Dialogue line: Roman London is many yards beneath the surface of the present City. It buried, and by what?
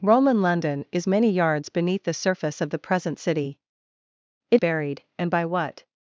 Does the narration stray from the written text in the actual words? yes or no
no